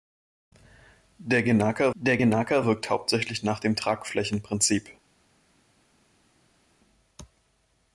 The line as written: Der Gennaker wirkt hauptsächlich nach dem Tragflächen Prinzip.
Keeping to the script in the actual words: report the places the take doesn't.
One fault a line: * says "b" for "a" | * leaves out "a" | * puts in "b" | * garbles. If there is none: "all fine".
* puts in "der Gennaker"